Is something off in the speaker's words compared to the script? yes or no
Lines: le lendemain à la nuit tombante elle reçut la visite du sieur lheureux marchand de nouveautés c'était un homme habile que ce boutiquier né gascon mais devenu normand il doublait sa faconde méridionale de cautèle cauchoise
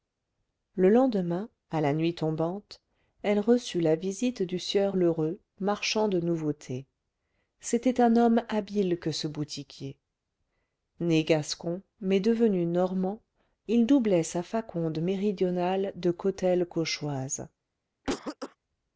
no